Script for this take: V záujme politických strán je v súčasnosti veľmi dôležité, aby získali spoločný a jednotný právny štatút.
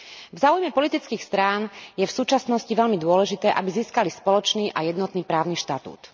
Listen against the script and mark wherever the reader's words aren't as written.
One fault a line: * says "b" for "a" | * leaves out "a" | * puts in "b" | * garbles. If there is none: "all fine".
all fine